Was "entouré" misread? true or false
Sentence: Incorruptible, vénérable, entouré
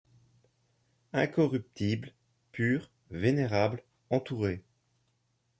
false